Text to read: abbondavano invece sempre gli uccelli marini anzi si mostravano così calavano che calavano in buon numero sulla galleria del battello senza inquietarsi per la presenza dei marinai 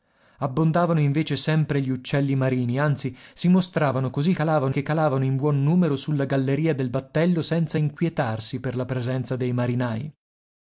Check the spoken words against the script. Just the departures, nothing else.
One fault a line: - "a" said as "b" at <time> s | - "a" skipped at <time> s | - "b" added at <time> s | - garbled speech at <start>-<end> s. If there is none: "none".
none